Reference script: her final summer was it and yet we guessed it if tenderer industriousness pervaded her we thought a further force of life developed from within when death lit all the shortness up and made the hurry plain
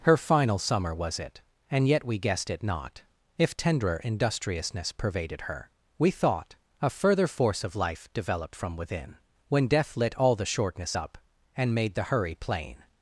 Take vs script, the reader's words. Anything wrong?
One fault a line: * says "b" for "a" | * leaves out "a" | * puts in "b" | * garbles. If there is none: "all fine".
* puts in "not"